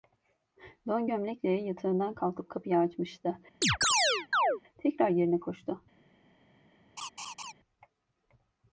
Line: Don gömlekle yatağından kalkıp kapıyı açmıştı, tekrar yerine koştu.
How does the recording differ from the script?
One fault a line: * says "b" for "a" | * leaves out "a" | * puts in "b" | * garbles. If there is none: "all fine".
all fine